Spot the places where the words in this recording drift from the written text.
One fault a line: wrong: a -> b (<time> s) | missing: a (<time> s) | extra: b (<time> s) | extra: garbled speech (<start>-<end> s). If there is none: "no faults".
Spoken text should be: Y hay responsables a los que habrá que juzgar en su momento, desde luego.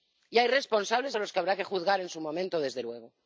no faults